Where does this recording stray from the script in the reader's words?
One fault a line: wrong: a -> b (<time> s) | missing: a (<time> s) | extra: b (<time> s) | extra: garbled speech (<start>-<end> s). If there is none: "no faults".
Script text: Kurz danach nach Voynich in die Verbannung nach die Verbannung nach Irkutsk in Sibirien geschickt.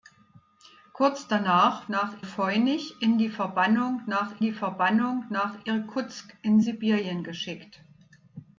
no faults